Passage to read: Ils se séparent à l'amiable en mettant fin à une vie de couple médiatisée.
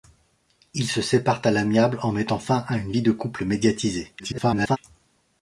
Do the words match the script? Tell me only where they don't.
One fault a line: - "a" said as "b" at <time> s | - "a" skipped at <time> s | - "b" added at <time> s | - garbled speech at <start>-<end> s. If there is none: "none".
- garbled speech at 4.2-4.8 s